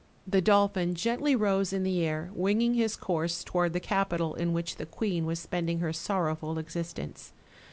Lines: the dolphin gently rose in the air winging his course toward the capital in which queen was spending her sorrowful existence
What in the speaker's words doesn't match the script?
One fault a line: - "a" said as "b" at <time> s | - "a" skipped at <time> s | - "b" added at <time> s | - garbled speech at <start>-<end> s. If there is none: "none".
- "the" added at 4.8 s